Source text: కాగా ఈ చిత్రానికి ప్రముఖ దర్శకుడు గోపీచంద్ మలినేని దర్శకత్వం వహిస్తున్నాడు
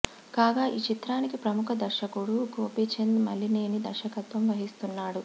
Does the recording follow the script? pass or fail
pass